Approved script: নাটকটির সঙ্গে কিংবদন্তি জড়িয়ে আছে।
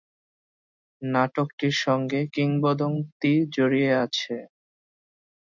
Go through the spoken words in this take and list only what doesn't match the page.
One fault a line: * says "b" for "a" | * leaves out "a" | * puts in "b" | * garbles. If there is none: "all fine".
all fine